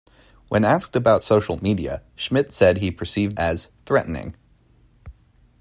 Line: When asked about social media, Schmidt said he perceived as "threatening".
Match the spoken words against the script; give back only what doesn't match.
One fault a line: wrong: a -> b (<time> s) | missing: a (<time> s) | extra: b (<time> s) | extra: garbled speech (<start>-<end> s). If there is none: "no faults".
no faults